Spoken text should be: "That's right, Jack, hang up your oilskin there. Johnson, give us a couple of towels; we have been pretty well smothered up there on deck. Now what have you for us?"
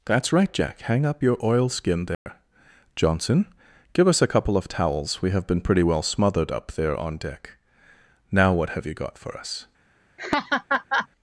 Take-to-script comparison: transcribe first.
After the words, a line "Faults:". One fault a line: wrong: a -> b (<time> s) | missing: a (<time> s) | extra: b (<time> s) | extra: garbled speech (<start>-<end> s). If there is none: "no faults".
"That's right, Jack, hang up your oilskin there. Johnson, give us a couple of towels; we have been pretty well smothered up there on deck. Now what have you got for us?"
Faults:
extra: got (8.9 s)